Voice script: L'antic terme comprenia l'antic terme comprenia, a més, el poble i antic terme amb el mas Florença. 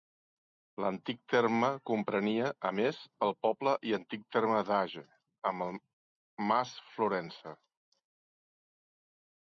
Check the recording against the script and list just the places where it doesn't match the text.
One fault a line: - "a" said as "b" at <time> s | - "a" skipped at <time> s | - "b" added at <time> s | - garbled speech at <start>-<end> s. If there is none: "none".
- "l'antic terme comprenia" skipped at 2.5 s
- "d'Age" added at 4.7 s